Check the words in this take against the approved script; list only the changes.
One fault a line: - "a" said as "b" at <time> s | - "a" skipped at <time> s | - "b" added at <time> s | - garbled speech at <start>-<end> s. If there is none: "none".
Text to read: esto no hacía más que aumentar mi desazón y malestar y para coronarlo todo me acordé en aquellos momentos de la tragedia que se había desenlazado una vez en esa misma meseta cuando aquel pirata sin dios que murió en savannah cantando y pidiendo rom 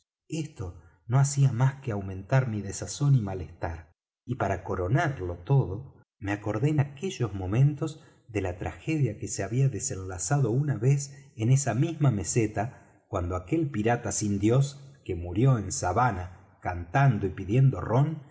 none